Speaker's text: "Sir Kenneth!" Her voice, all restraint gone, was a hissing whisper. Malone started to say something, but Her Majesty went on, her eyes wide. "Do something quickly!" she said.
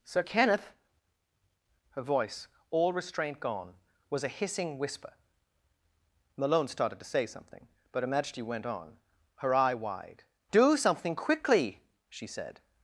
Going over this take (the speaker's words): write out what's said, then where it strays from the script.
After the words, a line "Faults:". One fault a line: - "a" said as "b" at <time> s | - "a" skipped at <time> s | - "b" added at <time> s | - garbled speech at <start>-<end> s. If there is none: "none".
"Sir Kenneth!" Her voice, all restraint gone, was a hissing whisper. Malone started to say something, but Her Majesty went on, her eye wide. "Do something quickly!" she said.
Faults:
- "eyes" said as "eye" at 9.5 s